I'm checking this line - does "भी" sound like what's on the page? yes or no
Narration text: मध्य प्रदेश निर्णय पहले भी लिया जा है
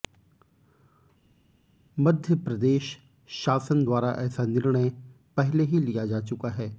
no